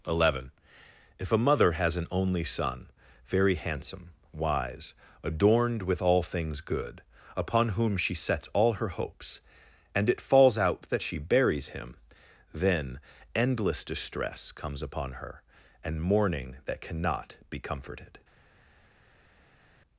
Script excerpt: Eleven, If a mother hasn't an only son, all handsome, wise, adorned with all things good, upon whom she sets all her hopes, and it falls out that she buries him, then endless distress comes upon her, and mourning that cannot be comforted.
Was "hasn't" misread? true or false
true